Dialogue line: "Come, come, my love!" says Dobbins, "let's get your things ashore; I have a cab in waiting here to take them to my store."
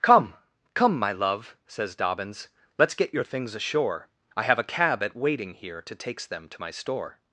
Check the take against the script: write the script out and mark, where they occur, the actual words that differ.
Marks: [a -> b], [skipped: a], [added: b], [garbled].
"Come, come, my love!" says Dobbins, "let's get your things ashore; I have a cab [in -> at] waiting here to [take -> takes] them to my store."